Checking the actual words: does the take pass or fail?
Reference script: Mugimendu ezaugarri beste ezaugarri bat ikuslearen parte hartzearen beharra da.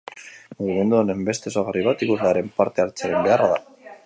fail